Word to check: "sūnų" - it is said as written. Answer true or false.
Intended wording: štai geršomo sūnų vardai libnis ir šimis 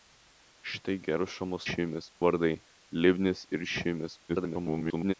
false